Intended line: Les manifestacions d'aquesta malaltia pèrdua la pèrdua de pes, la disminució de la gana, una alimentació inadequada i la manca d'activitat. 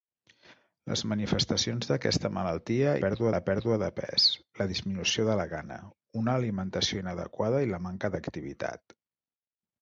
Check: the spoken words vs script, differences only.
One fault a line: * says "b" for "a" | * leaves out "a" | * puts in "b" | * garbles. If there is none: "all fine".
all fine